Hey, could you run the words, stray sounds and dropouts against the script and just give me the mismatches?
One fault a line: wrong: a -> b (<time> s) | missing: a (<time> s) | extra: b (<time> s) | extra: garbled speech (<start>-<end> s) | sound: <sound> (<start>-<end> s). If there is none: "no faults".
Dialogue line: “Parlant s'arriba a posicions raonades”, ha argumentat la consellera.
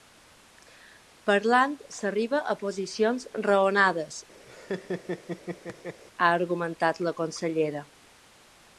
sound: laugh (4.5-6.0 s)